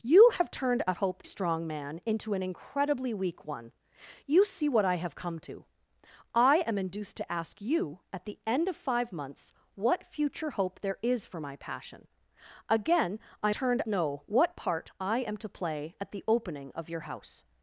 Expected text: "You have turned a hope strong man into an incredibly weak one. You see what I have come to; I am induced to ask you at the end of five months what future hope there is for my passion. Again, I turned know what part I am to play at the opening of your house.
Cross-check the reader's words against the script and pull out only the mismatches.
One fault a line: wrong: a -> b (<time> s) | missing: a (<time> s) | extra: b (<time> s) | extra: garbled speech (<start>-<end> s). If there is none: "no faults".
no faults